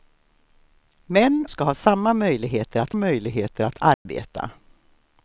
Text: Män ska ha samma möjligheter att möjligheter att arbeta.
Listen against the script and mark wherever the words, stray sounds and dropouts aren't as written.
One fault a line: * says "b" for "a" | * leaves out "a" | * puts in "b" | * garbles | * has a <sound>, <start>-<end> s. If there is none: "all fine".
* has a dropout, 3.9-4.1 s